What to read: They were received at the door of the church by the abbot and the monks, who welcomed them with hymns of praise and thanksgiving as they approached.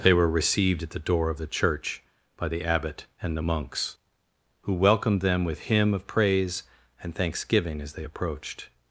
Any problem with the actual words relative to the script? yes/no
yes